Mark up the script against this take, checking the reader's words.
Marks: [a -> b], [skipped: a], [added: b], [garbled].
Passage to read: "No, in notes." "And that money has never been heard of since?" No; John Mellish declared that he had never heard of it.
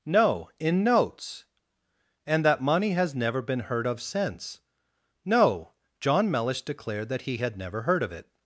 "No, in notes." "And that money has never been heard of since?" No; John Mellish declared that he had never heard of it.